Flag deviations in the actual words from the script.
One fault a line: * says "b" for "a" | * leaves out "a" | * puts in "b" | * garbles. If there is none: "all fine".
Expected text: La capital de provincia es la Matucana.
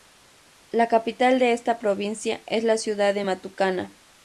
* puts in "esta"
* puts in "ciudad de"